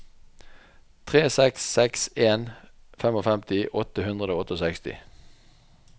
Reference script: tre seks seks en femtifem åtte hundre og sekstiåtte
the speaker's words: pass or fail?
pass